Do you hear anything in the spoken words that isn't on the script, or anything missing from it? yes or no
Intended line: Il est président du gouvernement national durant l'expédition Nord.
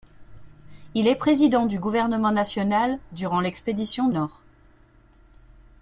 no